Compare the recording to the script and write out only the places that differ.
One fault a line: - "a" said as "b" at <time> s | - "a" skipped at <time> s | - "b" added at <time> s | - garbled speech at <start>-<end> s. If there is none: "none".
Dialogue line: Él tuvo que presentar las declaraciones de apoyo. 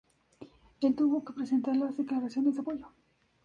none